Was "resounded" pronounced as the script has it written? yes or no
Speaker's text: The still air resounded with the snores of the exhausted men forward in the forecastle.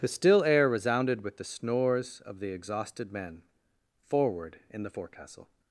yes